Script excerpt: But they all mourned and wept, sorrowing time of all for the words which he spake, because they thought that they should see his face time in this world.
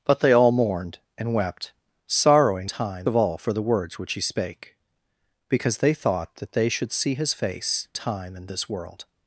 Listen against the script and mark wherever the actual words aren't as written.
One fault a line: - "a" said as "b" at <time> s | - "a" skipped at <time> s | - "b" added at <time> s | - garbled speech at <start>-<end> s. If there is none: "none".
none